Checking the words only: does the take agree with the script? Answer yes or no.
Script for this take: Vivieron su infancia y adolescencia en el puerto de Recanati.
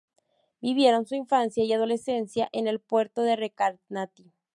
yes